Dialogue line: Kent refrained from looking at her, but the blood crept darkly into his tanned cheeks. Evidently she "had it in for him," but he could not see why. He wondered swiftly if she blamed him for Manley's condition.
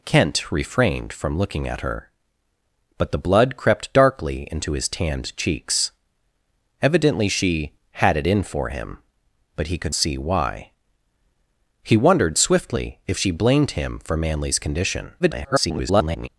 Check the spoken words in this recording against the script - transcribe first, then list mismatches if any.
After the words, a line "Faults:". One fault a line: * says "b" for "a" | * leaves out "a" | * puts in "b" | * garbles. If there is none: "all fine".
Kent refrained from looking at her, but the blood crept darkly into his tanned cheeks. Evidently she "had it in for him," but he could see why. He wondered swiftly if she blamed him for Manley's condition. [garbled]
Faults:
* leaves out "not"
* garbles